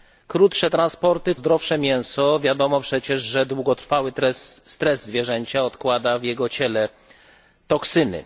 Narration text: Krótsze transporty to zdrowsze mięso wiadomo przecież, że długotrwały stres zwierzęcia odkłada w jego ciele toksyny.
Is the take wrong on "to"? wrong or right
wrong